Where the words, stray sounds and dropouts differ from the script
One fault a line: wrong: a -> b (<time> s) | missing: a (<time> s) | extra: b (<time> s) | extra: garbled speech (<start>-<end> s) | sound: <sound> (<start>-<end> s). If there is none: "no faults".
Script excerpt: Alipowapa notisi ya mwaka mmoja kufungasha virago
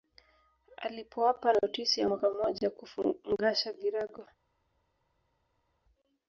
no faults